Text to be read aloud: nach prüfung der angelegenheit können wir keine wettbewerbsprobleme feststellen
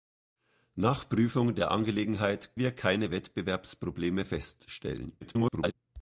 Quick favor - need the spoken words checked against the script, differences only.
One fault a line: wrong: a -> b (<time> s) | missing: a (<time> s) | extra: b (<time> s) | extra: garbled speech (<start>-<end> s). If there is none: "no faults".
missing: können (2.6 s)
extra: garbled speech (5.2-5.7 s)